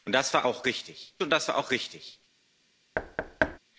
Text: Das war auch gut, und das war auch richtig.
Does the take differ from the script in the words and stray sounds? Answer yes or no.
yes